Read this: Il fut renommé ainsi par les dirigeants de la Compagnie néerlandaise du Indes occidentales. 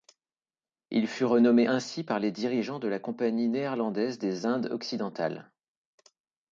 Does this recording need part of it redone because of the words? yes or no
yes